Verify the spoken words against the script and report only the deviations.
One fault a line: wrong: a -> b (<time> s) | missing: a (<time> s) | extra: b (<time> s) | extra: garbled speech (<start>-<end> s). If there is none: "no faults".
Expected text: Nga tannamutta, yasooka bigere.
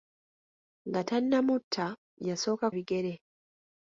no faults